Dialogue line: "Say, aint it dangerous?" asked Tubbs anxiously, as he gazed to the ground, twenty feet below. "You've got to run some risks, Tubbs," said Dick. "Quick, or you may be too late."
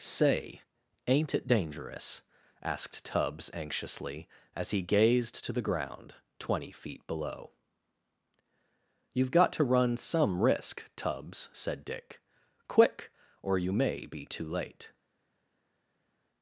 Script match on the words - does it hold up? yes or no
no